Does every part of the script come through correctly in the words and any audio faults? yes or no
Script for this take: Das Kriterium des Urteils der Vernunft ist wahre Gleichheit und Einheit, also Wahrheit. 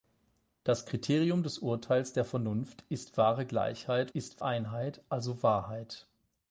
no